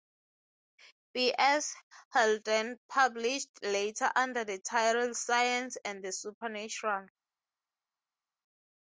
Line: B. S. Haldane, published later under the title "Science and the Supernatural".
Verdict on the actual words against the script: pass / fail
pass